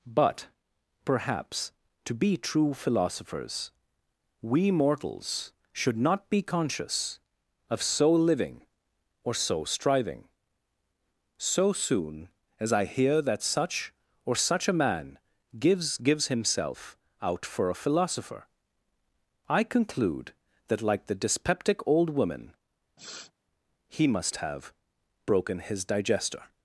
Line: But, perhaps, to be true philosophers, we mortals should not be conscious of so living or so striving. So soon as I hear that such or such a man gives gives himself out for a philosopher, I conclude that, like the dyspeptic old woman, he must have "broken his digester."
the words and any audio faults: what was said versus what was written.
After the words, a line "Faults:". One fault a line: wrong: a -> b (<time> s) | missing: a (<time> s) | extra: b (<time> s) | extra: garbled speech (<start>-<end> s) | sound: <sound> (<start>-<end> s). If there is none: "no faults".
But, perhaps, to be true philosophers, we mortals should not be conscious of so living or so striving. So soon as I hear that such or such a man gives gives himself out for a philosopher, I conclude that, like the dyspeptic old woman, he must have "broken his digester."
Faults:
sound: sniff (23.0-23.3 s)